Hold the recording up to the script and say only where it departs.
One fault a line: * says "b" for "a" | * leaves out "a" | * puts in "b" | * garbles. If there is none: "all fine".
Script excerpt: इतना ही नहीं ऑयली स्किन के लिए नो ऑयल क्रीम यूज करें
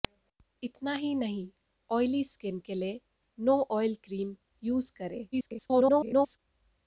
* garbles